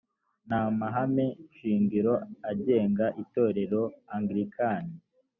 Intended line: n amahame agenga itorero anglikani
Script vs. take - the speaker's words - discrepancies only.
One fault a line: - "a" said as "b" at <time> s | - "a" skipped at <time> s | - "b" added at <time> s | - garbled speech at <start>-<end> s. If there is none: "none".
- "shingiro" added at 1.6 s